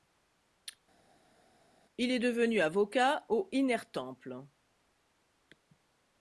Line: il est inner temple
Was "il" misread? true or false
false